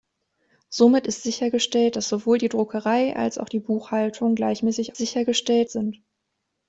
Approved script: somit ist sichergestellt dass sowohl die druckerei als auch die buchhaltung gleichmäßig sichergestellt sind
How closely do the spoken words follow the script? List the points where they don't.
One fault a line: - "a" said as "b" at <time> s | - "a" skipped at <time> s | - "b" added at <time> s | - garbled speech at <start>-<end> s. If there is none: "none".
none